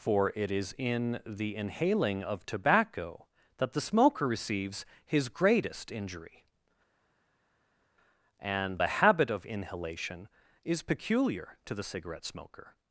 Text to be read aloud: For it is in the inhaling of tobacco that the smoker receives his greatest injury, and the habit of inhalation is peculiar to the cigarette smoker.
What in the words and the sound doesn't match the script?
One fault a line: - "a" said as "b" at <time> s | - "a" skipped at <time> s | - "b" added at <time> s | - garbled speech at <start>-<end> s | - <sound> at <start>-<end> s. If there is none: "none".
none